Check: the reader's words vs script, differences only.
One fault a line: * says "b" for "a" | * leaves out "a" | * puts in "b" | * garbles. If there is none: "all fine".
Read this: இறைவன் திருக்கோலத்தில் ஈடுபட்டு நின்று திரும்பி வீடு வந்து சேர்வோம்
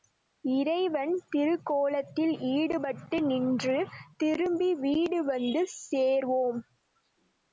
all fine